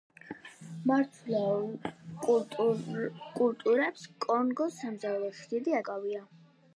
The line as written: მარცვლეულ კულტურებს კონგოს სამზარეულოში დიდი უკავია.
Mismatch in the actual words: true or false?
false